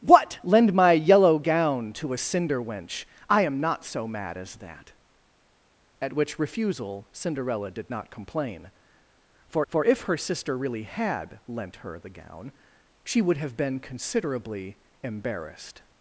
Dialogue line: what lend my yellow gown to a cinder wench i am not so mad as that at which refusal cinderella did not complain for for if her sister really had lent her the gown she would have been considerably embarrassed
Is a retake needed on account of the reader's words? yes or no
no